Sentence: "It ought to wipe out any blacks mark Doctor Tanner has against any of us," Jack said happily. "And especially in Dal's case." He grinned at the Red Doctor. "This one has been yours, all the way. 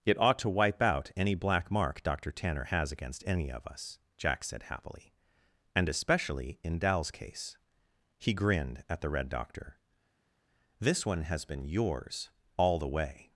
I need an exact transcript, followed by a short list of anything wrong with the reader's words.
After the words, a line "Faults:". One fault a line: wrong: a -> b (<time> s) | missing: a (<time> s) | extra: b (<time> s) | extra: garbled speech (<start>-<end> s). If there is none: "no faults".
"It ought to wipe out any black mark Doctor Tanner has against any of us," Jack said happily. "And especially in Dal's case." He grinned at the Red Doctor. "This one has been yours, all the way.
Faults:
wrong: blacks -> black (1.4 s)